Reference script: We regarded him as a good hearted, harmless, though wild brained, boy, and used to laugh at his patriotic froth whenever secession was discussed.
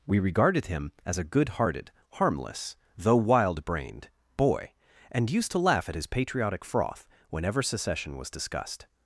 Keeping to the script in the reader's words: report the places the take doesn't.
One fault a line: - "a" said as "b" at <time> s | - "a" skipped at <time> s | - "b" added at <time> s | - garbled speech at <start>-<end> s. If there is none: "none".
none